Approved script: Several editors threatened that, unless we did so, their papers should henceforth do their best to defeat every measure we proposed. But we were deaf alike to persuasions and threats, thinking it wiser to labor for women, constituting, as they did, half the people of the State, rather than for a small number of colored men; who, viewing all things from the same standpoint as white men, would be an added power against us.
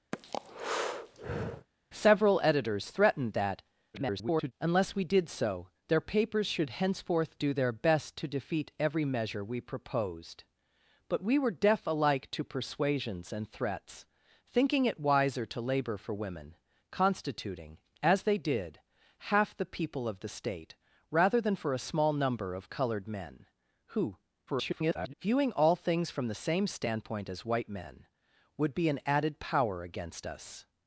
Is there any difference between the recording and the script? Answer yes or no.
yes